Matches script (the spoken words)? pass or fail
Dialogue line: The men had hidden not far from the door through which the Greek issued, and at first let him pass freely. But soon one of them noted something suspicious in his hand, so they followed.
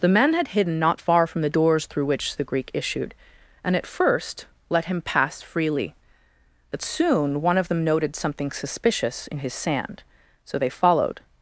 fail